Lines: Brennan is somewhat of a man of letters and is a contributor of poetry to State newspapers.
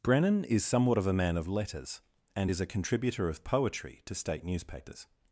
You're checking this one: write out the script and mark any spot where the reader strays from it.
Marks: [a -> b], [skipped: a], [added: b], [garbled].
Brennan is somewhat of a man of letters and is a contributor of poetry to State newspapers.